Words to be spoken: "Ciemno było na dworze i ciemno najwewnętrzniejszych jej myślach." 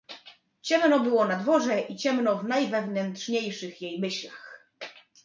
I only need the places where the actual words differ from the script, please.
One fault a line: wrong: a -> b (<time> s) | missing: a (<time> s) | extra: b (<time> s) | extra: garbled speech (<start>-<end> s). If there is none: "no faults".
extra: w (2.4 s)